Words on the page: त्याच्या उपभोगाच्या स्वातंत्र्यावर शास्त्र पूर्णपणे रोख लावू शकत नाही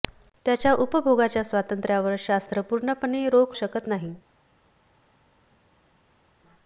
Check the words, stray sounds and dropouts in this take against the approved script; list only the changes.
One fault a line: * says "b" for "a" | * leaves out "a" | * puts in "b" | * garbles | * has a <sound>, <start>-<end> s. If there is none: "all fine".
* leaves out "लावू"